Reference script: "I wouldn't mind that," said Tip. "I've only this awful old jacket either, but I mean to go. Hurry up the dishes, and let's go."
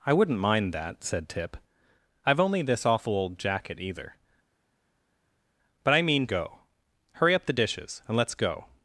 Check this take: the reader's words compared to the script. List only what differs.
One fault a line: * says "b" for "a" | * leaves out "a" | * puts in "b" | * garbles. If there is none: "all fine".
* leaves out "to"